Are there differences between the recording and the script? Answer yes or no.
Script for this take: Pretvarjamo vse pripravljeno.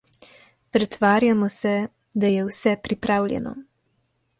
yes